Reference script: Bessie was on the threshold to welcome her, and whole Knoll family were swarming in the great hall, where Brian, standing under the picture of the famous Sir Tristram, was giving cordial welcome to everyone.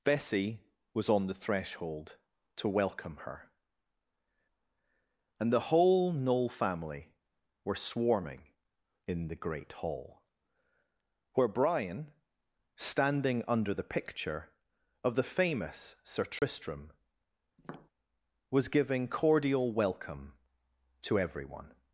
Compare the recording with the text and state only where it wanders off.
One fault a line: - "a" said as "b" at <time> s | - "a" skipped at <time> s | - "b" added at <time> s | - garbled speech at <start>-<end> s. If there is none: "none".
- "the" added at 5.5 s